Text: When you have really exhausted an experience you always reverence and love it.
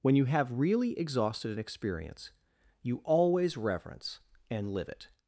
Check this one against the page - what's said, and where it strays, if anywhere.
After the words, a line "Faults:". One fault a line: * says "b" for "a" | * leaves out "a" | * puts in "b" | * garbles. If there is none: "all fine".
When you have really exhausted an experience you always reverence and live it.
Faults:
* says "live" for "love"